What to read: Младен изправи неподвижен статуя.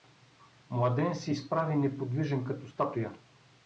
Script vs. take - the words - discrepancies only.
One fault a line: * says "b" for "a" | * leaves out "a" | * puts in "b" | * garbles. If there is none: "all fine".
* puts in "се"
* puts in "като"